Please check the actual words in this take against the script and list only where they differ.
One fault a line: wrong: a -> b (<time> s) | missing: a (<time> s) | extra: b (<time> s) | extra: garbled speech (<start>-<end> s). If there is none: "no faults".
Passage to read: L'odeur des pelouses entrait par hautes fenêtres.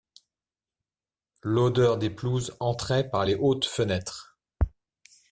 extra: les (3.3 s)